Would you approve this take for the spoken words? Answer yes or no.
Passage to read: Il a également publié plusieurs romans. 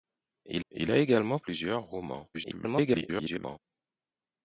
no